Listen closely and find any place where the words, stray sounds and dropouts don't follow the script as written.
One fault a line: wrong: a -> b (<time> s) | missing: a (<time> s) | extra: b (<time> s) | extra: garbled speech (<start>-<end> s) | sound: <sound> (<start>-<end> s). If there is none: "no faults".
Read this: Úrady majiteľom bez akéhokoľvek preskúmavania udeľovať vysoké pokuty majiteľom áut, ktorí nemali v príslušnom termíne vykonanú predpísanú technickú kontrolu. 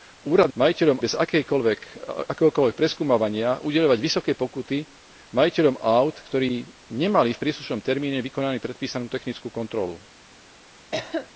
sound: cough (10.9-11.3 s)